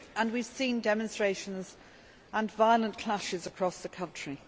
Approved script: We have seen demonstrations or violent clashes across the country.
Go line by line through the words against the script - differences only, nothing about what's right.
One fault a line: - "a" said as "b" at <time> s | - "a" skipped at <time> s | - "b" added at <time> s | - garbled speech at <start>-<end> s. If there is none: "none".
- "or" said as "and" at 2.3 s